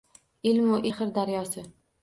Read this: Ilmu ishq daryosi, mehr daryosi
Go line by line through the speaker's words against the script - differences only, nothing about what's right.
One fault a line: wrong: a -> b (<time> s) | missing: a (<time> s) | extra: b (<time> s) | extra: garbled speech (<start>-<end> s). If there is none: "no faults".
missing: ishq daryosi (0.8 s)